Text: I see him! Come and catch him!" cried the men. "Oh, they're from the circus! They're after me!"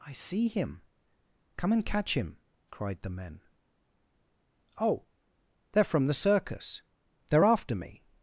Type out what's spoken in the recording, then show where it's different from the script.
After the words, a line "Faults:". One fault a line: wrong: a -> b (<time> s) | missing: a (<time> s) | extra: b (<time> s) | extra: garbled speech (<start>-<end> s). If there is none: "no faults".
I see him! Come and catch him!" cried the men. "Oh, they're from the circus! They're after me!"
Faults:
no faults